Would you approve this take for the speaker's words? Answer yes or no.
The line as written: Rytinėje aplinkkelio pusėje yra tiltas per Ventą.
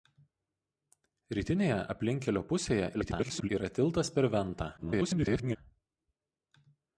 no